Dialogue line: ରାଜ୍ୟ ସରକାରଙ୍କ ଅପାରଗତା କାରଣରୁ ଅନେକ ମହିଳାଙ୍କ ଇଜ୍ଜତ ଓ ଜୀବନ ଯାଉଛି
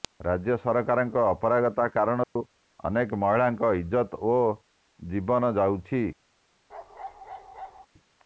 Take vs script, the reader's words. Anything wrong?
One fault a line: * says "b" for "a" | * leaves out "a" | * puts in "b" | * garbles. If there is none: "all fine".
all fine